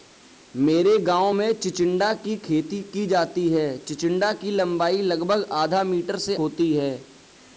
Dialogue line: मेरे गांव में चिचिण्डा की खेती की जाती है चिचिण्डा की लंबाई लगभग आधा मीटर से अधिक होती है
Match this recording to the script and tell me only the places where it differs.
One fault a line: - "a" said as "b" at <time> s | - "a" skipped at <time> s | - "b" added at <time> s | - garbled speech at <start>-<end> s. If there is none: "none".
- "अधिक" skipped at 6.3 s